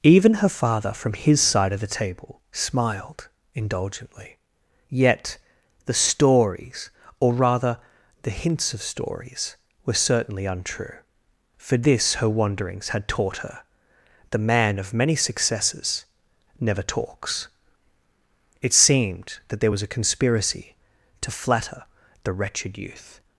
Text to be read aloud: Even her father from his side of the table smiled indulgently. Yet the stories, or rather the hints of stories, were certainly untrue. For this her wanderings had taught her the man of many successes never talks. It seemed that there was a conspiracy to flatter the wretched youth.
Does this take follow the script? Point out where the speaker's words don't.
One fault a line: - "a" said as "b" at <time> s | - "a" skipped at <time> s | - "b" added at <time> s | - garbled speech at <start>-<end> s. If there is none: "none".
none